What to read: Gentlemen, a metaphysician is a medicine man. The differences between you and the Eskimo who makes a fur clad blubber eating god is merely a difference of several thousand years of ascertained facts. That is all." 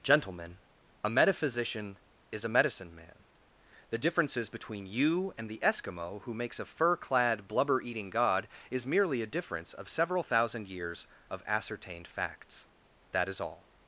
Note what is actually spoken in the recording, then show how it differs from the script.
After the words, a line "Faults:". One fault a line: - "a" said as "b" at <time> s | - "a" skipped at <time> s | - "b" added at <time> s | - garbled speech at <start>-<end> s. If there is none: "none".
Gentlemen, a metaphysician is a medicine man. The differences between you and the Eskimo who makes a fur clad blubber eating god is merely a difference of several thousand years of ascertained facts. That is all."
Faults:
none